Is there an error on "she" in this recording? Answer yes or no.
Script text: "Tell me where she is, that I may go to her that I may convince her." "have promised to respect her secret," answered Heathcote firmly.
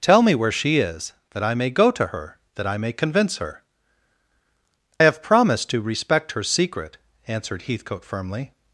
no